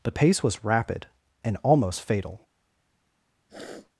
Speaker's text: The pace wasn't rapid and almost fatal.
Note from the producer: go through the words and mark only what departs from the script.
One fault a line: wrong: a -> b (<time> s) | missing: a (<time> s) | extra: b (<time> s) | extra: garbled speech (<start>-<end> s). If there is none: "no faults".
wrong: wasn't -> was (0.4 s)